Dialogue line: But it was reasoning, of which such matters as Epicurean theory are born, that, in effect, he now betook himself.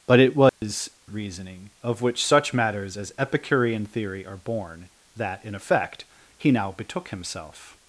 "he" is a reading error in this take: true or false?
false